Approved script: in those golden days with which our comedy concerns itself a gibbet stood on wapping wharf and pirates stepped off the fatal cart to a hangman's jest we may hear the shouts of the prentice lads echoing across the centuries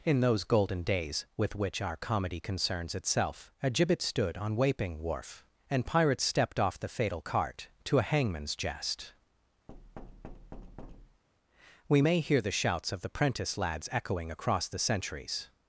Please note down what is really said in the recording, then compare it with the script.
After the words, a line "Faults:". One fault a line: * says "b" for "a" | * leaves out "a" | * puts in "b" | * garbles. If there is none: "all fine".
in those golden days with which our comedy concerns itself a gibbet stood on wapping wharf and pirates stepped off the fatal cart to a hangman's jest we may hear the shouts of the prentice lads echoing across the centuries
Faults:
all fine